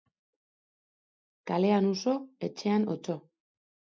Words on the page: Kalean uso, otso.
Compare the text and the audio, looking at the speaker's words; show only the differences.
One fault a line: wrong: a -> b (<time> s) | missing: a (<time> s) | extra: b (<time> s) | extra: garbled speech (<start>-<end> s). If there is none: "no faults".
extra: etxean (2.5 s)